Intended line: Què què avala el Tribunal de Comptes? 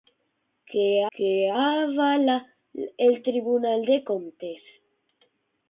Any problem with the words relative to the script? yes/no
no